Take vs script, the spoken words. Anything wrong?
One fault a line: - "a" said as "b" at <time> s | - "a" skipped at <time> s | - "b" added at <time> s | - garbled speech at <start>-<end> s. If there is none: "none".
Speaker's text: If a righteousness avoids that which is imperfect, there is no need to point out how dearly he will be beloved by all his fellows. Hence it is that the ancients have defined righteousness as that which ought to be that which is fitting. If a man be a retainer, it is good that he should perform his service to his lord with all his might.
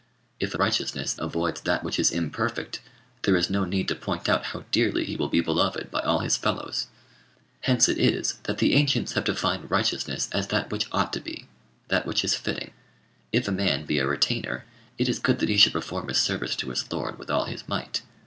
none